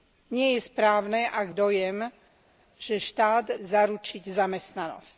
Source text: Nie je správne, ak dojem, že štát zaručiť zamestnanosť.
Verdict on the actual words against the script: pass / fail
pass